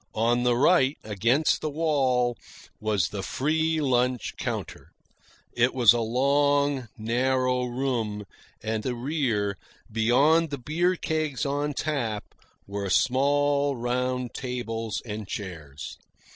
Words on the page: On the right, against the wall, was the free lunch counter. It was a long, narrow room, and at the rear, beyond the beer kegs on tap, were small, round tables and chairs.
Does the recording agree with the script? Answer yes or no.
no